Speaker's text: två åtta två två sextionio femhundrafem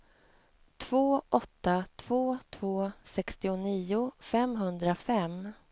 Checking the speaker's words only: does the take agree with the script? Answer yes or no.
yes